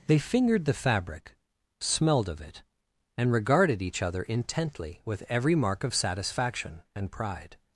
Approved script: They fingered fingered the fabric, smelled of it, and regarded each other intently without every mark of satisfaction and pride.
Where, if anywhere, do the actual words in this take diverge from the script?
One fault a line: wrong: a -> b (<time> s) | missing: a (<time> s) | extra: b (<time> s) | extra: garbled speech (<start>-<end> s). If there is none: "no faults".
missing: fingered (0.7 s)
wrong: without -> with (5.0 s)